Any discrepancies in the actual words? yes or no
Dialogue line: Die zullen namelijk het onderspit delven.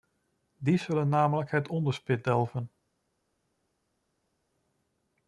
no